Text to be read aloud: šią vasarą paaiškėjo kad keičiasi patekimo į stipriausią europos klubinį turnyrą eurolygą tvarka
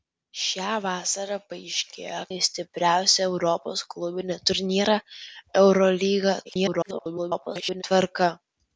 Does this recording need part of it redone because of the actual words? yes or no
yes